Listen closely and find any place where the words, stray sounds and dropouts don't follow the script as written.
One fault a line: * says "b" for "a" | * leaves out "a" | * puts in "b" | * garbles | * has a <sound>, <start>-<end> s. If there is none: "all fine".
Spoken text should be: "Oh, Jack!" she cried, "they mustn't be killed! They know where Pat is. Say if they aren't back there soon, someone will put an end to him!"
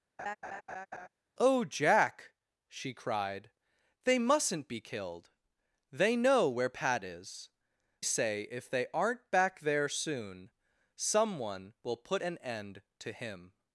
* has a laugh, 0.2-1.1 s